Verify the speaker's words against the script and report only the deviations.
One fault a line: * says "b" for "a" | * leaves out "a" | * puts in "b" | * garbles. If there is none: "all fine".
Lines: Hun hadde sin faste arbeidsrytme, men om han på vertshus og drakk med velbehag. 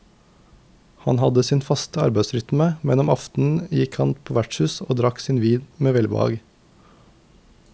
* says "Han" for "Hun"
* puts in "aftenen gikk"
* puts in "sin vin"